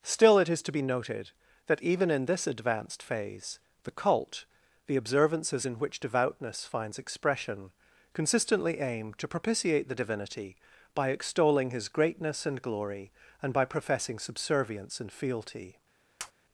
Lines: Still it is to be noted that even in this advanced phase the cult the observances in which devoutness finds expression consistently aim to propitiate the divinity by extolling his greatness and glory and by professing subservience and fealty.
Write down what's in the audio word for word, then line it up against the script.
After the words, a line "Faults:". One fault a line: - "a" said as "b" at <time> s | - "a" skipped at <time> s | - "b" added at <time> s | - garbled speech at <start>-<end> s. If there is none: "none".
Still it is to be noted that even in this advanced phase the cult the observances in which devoutness finds expression consistently aim to propitiate the divinity by extolling his greatness and glory and by professing subservience and fealty.
Faults:
none